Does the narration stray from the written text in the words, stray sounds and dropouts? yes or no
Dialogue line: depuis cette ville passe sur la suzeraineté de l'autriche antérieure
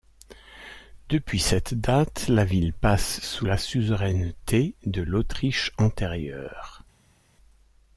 yes